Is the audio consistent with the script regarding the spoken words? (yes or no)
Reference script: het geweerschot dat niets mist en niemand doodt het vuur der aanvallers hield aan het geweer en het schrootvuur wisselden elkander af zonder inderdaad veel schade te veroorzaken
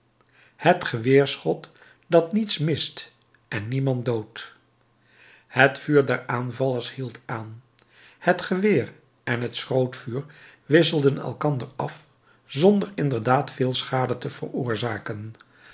yes